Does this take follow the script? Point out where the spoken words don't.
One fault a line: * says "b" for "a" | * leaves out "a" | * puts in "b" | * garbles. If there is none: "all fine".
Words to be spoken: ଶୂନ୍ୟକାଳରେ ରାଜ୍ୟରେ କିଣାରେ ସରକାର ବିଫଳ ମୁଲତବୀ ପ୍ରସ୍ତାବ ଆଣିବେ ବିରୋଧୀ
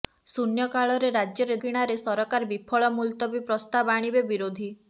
all fine